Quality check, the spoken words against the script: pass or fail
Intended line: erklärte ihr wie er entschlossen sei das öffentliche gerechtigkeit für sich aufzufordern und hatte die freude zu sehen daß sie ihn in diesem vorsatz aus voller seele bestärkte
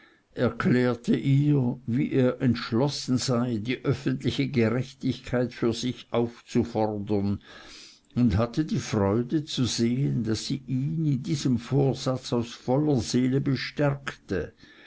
fail